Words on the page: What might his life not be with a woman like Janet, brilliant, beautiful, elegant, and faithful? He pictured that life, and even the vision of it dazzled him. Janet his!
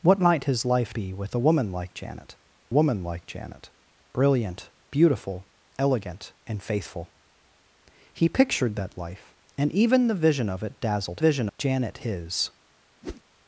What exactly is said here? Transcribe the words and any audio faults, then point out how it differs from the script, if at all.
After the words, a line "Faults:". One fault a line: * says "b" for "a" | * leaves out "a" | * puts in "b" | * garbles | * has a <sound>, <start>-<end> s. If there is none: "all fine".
What might his life be with a woman like Janet woman like Janet, brilliant, beautiful, elegant, and faithful? He pictured that life, and even the vision of it dazzled vision. Janet his!
Faults:
* leaves out "not"
* puts in "woman like Janet"
* says "vision" for "him"
* has a whoosh, 13.0-13.2 s